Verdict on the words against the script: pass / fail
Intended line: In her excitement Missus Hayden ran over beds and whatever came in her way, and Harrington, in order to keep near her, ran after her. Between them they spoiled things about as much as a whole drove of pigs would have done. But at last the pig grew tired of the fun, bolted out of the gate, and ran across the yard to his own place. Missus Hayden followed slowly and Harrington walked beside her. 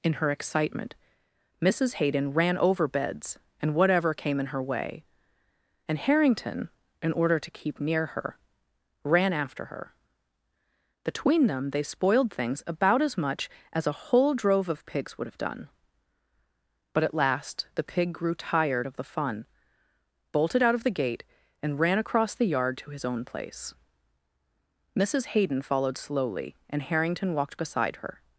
pass